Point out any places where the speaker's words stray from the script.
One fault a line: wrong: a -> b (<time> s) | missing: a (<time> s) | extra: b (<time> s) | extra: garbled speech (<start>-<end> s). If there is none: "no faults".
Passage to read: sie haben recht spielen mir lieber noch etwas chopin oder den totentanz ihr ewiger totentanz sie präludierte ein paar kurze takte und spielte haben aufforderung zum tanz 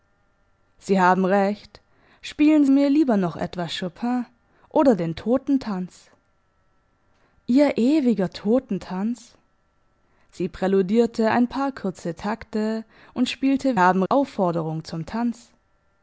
no faults